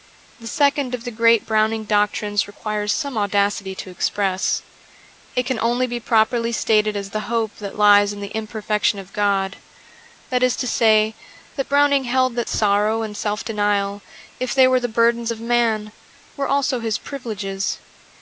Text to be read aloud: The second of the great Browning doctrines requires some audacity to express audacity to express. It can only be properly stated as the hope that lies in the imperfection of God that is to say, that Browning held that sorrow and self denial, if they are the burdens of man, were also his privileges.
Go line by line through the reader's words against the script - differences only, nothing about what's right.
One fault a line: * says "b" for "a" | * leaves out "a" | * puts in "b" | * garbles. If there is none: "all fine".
* leaves out "audacity to express"
* says "were" for "are"